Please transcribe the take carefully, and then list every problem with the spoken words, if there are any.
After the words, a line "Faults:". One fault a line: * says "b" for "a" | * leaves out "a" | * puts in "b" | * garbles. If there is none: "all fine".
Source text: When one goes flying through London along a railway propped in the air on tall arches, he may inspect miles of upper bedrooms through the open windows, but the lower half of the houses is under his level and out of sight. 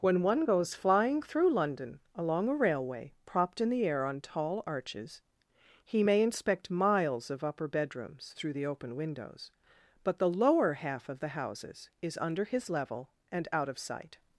When one goes flying through London along a railway propped in the air on tall arches, he may inspect miles of upper bedrooms through the open windows, but the lower half of the houses is under his level and out of sight.
Faults:
all fine